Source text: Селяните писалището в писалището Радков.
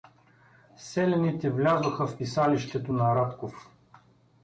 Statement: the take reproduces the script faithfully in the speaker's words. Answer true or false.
false